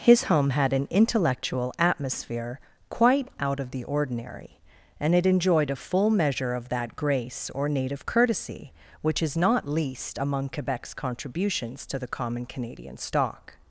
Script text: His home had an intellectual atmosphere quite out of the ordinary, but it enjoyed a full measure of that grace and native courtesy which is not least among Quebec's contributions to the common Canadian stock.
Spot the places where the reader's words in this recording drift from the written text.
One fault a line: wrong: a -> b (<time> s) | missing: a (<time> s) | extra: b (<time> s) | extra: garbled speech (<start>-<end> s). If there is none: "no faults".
wrong: but -> and (5.0 s)
wrong: and -> or (7.5 s)